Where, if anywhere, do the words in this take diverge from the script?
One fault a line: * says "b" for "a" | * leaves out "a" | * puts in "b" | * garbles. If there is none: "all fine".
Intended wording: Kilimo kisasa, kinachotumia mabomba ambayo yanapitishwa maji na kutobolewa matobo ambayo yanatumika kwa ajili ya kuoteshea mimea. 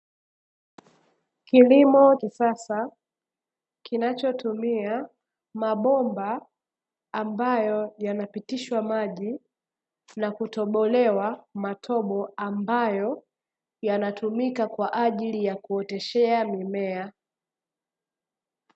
all fine